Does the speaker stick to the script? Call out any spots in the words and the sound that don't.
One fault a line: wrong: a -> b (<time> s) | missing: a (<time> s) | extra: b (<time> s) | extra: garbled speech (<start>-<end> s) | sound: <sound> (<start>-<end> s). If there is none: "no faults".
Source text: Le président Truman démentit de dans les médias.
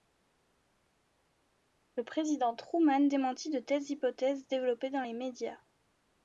extra: telles hypothèses développées (3.6 s)